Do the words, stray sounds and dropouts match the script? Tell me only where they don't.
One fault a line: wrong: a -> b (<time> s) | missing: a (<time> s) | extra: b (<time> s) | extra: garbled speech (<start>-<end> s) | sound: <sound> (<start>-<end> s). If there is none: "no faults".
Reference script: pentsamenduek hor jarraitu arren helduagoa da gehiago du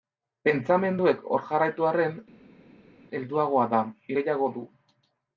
no faults